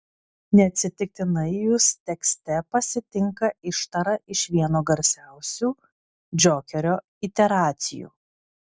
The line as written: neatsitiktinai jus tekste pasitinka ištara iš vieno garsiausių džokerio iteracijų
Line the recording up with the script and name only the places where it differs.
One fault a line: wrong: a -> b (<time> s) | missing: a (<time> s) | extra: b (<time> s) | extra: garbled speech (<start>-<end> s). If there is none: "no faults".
no faults